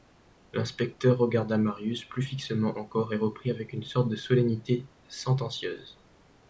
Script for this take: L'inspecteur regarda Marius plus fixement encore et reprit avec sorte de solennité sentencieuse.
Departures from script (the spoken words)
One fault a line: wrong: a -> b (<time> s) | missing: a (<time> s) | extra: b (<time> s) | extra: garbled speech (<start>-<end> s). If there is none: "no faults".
extra: une (3.7 s)